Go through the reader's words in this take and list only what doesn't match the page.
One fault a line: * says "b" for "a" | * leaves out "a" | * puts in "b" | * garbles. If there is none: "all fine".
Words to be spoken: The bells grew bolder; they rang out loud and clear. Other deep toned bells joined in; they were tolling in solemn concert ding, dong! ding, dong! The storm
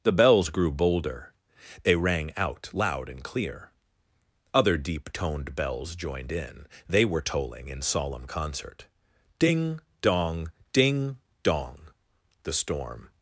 all fine